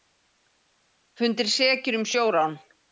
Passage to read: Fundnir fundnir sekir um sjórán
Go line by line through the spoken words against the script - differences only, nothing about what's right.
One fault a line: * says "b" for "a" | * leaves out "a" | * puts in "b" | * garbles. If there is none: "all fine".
* leaves out "fundnir"